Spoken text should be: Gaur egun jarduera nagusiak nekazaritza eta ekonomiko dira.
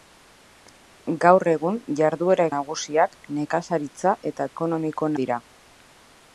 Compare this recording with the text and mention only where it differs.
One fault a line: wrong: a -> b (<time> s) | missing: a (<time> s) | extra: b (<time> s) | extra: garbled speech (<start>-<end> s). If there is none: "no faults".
no faults